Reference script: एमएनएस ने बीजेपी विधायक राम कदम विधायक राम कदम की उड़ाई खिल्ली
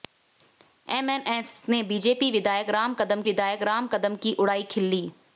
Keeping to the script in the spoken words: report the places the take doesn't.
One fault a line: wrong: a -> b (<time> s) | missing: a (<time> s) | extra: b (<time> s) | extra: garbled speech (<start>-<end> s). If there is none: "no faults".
no faults